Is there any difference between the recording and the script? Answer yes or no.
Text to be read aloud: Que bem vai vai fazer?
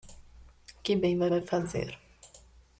no